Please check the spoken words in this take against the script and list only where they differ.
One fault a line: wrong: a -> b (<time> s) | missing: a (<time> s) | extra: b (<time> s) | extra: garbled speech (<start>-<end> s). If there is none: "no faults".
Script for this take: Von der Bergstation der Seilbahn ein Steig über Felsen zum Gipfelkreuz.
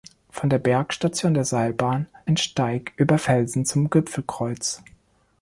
no faults